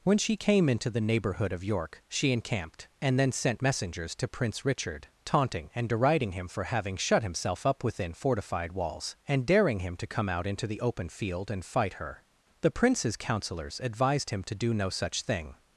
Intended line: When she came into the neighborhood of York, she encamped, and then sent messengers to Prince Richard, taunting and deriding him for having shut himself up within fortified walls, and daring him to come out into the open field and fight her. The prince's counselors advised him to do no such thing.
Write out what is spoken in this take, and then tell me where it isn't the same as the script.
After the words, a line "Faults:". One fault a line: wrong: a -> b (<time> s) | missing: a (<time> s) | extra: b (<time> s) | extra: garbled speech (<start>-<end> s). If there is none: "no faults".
When she came into the neighborhood of York, she encamped, and then sent messengers to Prince Richard, taunting and deriding him for having shut himself up within fortified walls, and daring him to come out into the open field and fight her. The prince's counselors advised him to do no such thing.
Faults:
no faults